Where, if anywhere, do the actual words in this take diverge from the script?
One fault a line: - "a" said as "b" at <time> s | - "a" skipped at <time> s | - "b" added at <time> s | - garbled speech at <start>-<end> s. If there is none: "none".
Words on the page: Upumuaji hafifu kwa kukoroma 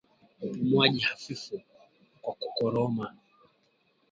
none